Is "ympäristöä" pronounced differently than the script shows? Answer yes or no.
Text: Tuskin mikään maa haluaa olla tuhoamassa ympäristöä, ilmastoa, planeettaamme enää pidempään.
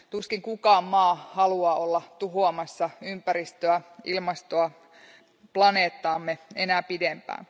no